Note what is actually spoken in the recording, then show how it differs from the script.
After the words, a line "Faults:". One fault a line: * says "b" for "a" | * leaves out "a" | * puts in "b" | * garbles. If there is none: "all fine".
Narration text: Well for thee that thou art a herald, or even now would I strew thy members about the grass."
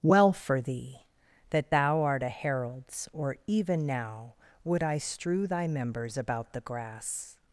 Well for thee that thou art a heralds, or even now would I strew thy members about the grass."
Faults:
* says "heralds" for "herald"